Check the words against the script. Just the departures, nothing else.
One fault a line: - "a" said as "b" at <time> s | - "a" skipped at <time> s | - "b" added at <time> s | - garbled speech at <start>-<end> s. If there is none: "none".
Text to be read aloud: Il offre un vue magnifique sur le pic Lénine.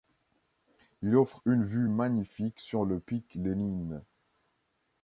- "un" said as "une" at 1.4 s